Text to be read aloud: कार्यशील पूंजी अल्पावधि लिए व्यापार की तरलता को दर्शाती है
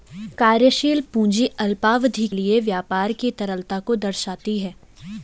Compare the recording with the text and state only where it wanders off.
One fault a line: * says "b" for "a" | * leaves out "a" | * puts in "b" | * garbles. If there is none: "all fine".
all fine